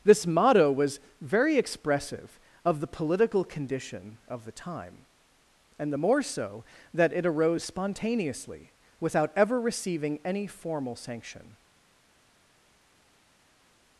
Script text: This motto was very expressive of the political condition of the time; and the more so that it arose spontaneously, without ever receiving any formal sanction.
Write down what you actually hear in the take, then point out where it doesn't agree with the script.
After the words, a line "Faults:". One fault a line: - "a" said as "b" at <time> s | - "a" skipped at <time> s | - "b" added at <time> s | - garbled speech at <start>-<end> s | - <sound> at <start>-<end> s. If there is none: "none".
This motto was very expressive of the political condition of the time; and the more so that it arose spontaneously, without ever receiving any formal sanction.
Faults:
none